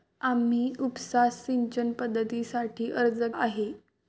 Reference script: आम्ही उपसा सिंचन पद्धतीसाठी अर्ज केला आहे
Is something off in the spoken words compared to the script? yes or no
yes